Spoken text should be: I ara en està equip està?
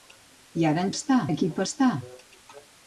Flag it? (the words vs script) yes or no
no